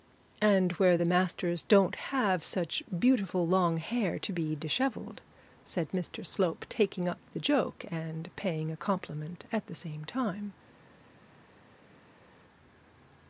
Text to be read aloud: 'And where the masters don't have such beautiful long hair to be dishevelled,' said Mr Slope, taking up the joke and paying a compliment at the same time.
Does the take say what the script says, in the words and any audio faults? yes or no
yes